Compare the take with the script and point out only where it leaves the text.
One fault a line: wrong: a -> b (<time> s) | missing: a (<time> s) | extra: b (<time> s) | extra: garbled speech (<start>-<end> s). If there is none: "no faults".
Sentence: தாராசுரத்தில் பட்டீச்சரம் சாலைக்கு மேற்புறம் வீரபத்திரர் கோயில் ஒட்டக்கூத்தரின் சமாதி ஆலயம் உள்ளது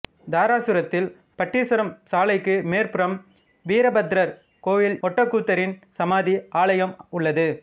no faults